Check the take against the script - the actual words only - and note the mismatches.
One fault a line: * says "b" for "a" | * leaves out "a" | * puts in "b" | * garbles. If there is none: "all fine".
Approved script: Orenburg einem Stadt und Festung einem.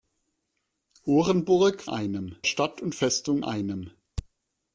all fine